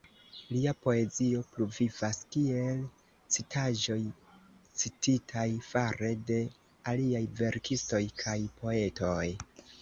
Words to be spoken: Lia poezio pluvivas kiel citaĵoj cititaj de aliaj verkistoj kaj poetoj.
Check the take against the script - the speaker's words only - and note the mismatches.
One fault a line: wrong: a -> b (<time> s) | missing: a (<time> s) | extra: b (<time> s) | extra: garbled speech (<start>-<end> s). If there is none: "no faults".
extra: fare (5.7 s)